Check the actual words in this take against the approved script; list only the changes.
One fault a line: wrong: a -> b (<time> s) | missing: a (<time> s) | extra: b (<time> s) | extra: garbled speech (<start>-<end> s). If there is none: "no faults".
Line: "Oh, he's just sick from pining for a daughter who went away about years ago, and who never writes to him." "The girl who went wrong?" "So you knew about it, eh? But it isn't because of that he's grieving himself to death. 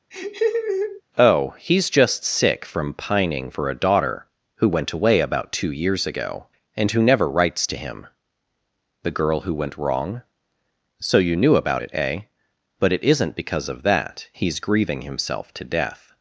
extra: two (5.5 s)